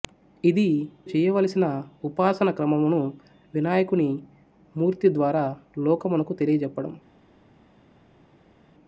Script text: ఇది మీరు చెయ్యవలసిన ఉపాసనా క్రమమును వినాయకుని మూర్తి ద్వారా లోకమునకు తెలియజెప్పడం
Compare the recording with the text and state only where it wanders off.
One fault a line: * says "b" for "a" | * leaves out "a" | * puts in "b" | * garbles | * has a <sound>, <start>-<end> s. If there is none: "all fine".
* leaves out "మీరు"